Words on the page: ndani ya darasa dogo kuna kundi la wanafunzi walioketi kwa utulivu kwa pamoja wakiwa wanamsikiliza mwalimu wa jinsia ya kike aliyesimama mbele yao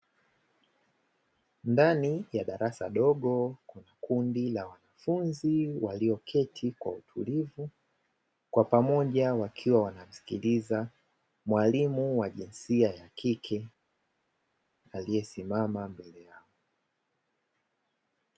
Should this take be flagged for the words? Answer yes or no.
no